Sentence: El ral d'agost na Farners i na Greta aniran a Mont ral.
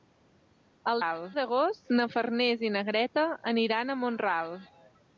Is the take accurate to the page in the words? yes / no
yes